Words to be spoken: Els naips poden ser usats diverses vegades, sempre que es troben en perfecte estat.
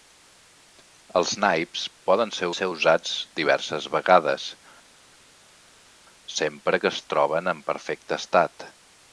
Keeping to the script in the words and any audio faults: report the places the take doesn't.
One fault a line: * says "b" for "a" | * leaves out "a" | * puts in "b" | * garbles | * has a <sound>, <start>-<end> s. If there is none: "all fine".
* puts in "ser"